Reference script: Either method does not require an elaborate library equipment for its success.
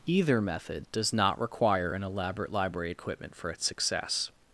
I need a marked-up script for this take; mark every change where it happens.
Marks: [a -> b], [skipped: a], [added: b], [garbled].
Either method does not require an elaborate library equipment for its success.